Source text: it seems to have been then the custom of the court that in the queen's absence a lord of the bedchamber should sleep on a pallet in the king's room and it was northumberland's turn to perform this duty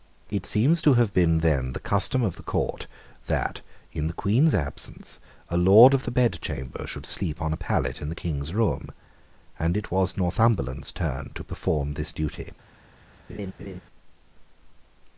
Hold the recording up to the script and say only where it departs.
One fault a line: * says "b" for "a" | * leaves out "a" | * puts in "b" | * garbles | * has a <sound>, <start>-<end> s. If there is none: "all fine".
* has a laugh, 13.3-13.8 s